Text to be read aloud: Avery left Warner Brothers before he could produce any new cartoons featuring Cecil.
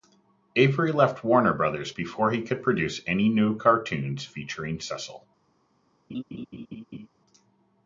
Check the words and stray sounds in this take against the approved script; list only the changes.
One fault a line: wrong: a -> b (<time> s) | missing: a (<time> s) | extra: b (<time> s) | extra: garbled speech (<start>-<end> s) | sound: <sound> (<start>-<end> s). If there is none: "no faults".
sound: laugh (6.1-7.1 s)